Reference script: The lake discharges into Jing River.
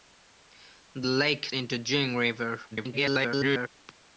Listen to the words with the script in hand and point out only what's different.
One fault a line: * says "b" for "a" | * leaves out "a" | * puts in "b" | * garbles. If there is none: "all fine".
* leaves out "discharges"
* garbles